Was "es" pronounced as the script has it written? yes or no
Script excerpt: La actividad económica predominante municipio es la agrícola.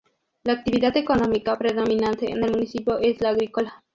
yes